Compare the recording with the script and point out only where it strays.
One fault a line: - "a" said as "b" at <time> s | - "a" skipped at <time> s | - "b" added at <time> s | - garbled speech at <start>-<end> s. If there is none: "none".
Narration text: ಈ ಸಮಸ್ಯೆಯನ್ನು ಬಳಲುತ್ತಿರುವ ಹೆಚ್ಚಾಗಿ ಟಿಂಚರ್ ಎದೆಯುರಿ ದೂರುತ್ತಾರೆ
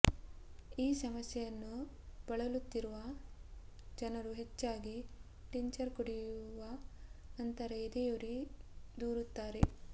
- "ಜನರು" added at 4.0 s
- "ಕುಡಿಯುವ ನಂತರ" added at 6.0 s